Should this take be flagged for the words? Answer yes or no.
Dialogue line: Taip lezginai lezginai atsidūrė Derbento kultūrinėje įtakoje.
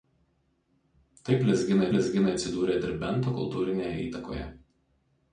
no